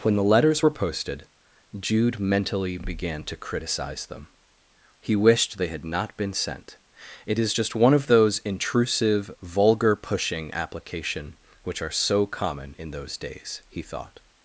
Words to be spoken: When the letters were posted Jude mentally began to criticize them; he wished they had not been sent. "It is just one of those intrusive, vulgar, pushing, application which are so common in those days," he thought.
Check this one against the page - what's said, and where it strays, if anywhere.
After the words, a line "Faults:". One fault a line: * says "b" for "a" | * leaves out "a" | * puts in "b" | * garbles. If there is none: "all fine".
When the letters were posted Jude mentally began to criticize them; he wished they had not been sent. "It is just one of those intrusive, vulgar, pushing, application which are so common in those days," he thought.
Faults:
all fine